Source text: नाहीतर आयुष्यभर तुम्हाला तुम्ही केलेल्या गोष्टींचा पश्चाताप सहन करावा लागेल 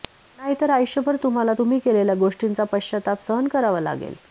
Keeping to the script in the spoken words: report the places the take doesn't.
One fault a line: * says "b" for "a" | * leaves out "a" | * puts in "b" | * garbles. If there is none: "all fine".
all fine